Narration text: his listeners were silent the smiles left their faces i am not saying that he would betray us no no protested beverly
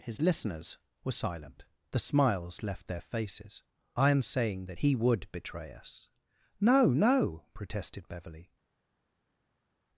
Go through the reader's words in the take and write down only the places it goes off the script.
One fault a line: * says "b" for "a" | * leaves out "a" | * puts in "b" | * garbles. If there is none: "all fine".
* leaves out "not"